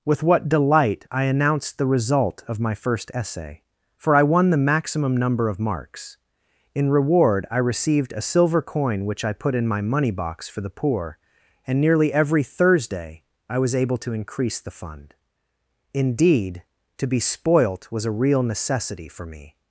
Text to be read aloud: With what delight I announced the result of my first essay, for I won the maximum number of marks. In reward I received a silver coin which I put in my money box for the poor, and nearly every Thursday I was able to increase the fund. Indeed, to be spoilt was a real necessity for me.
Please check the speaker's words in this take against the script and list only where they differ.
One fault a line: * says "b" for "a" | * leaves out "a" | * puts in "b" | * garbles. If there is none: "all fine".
all fine